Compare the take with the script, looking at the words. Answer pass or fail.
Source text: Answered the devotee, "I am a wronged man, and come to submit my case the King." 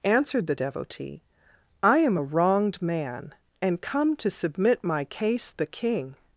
pass